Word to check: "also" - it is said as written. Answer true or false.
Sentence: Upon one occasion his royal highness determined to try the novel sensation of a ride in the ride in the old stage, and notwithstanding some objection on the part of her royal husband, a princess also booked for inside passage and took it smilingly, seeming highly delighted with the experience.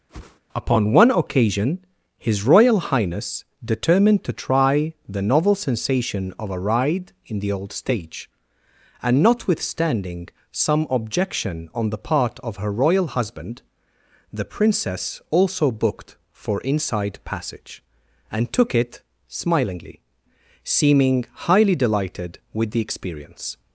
true